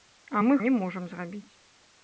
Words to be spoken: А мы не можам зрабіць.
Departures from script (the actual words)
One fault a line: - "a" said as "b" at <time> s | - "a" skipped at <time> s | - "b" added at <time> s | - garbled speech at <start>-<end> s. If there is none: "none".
none